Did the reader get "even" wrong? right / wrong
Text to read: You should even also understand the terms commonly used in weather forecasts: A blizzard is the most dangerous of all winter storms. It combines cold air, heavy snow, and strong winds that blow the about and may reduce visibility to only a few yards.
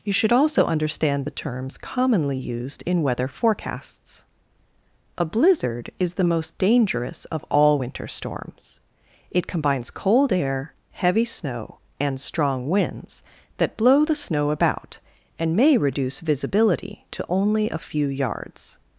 wrong